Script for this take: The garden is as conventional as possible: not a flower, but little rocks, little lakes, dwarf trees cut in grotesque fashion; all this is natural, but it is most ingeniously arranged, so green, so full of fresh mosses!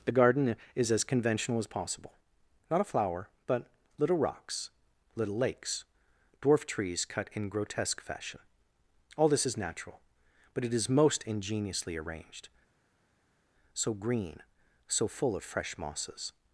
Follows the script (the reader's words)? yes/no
yes